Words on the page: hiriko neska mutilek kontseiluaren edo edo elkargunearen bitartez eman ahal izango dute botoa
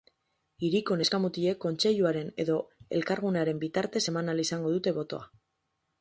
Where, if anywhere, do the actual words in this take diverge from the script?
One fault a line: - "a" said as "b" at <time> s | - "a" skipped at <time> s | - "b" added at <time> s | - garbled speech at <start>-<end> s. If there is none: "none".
- "edo" skipped at 2.5 s